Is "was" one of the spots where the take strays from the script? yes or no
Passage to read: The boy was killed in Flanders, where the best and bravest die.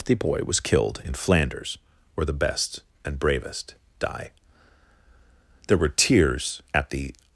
no